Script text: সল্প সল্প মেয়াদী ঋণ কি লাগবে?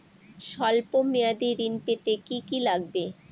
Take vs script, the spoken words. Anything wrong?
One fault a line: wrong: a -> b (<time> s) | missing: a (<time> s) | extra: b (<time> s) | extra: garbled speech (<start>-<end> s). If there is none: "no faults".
missing: সল্প (0.9 s)
extra: পেতে কি (1.9 s)